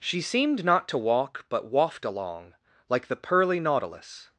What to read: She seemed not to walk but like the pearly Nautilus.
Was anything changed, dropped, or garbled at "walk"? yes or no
no